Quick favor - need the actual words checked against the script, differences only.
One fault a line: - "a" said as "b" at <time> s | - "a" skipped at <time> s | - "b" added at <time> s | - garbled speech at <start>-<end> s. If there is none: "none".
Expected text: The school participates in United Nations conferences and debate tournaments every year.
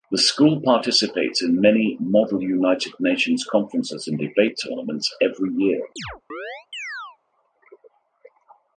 - "many Model" added at 1.6 s